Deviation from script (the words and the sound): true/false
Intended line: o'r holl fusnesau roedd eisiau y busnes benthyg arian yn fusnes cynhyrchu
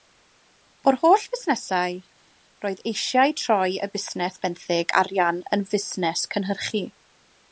true